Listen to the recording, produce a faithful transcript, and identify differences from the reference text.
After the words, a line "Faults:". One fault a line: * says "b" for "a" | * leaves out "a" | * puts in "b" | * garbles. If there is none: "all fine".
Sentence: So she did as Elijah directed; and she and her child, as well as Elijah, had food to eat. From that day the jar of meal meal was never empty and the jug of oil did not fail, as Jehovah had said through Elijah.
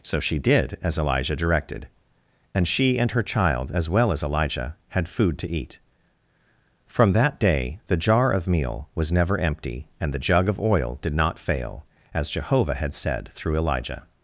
So she did as Elijah directed; and she and her child, as well as Elijah, had food to eat. From that day the jar of meal was never empty and the jug of oil did not fail, as Jehovah had said through Elijah.
Faults:
* leaves out "meal"